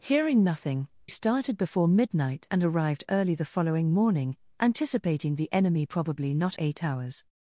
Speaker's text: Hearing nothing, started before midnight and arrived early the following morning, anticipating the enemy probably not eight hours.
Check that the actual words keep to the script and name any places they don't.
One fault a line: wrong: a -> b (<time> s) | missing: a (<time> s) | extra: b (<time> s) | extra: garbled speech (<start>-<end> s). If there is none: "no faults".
no faults